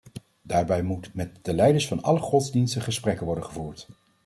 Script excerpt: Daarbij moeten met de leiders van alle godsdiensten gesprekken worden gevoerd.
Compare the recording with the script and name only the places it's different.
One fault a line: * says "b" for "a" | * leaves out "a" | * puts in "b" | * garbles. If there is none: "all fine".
all fine